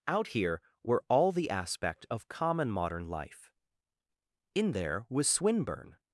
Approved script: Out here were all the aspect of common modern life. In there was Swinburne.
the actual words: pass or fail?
pass